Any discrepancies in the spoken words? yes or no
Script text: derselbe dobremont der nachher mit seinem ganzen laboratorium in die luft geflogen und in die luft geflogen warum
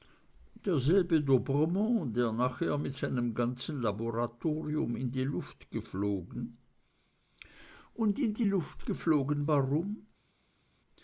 no